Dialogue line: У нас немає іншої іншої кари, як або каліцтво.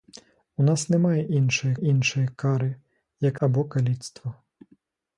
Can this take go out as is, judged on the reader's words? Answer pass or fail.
pass